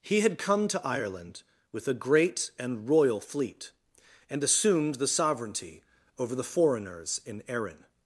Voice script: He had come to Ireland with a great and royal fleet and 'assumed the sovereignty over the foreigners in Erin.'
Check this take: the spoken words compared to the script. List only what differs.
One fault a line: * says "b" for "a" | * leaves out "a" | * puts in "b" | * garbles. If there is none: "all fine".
all fine